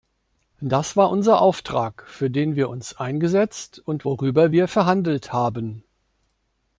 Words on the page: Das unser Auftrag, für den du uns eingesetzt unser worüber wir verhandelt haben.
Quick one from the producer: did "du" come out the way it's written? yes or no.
no